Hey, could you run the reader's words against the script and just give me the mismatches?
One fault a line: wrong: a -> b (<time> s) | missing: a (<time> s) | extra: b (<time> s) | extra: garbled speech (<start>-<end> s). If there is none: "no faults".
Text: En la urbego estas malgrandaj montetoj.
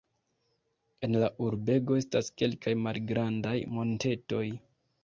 extra: kelkaj (2.4 s)